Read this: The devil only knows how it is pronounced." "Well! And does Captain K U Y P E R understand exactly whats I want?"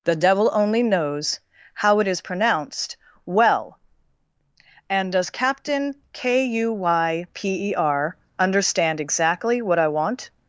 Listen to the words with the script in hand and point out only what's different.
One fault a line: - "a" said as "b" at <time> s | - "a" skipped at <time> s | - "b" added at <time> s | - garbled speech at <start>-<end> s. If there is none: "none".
- "whats" said as "what" at 9.6 s